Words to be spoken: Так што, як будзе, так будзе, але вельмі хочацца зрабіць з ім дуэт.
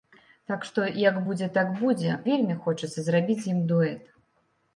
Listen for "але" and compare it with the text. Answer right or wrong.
wrong